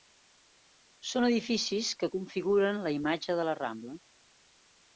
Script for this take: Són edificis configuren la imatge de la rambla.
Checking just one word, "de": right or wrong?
right